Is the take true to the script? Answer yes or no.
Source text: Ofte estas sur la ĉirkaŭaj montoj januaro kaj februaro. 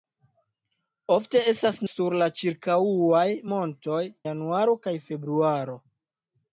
yes